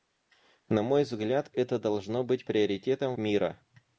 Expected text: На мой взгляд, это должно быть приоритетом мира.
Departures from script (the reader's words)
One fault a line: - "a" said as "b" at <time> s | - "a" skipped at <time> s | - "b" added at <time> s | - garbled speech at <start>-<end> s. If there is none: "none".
none